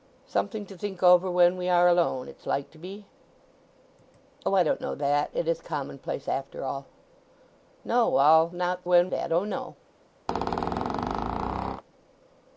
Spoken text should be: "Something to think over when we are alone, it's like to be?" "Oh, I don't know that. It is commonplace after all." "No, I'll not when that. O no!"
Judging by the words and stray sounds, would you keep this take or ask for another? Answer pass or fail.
fail